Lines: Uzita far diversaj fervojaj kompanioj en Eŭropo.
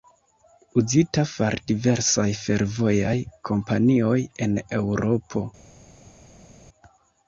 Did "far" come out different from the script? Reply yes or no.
no